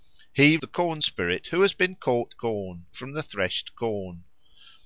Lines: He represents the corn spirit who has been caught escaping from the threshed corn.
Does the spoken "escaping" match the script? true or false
false